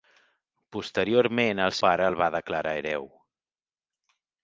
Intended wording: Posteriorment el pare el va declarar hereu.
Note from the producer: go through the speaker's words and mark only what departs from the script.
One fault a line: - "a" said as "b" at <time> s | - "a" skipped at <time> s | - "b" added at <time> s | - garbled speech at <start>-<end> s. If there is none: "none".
none